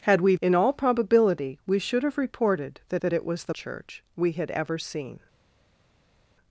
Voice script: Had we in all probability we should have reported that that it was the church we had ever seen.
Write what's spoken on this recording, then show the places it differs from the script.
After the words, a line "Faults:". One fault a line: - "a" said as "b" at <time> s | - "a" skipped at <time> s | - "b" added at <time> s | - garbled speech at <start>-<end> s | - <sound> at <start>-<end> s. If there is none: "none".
Had we in all probability we should have reported that that it was the church we had ever seen.
Faults:
none